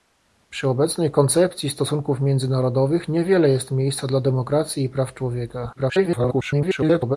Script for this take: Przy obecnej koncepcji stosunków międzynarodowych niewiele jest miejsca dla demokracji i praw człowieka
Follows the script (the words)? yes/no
no